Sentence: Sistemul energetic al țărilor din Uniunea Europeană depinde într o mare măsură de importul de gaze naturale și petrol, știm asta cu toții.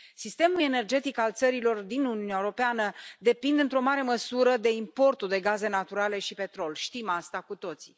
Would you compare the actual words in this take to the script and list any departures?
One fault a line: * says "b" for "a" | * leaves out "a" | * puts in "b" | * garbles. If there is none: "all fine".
all fine